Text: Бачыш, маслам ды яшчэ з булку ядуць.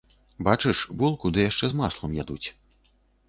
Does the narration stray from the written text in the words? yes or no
yes